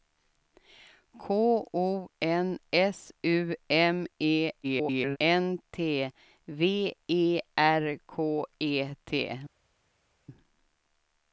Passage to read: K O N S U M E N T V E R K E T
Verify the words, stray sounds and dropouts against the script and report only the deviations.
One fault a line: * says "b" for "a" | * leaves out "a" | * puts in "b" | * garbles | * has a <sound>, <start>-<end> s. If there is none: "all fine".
* garbles